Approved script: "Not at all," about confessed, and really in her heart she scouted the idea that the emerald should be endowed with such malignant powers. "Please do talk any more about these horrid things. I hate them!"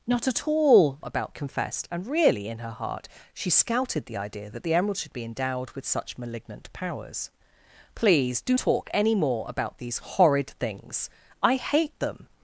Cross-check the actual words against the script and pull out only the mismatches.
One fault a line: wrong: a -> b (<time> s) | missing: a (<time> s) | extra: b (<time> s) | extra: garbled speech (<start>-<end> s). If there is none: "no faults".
no faults